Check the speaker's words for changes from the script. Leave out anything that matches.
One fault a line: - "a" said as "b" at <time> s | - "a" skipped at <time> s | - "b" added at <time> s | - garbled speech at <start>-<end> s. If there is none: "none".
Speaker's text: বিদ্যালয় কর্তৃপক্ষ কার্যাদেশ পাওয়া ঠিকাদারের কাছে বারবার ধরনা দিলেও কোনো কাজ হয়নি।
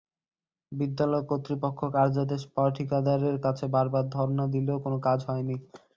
none